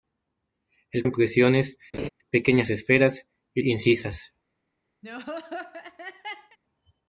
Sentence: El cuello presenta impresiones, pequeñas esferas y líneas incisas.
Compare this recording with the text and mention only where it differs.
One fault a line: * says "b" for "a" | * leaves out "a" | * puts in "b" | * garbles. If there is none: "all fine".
* leaves out "cuello presenta"
* leaves out "líneas"